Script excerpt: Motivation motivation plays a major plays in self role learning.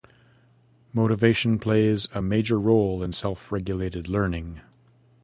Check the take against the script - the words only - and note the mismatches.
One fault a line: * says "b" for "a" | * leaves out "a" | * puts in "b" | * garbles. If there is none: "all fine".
* leaves out "motivation"
* says "role" for "plays"
* says "regulated" for "role"